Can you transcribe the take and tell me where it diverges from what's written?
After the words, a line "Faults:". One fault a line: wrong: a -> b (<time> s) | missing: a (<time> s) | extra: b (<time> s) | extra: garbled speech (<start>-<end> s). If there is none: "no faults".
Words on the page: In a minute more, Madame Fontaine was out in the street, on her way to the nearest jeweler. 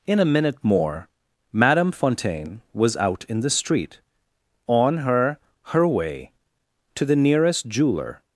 In a minute more, Madame Fontaine was out in the street, on her her way to the nearest jeweler.
Faults:
extra: her (5.7 s)